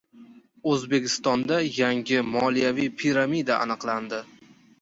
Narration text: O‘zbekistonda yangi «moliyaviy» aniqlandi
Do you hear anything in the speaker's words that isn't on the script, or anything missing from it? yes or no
yes